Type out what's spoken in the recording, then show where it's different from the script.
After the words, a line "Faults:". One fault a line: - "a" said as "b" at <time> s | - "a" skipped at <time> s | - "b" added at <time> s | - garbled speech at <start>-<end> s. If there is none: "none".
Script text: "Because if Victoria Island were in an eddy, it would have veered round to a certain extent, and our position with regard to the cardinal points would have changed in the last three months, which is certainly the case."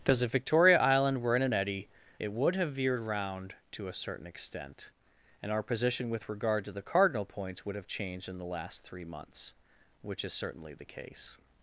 "Because if Victoria Island were in an eddy, it would have veered round to a certain extent, and our position with regard to the cardinal points would have changed in the last three months, which is certainly the case."
Faults:
none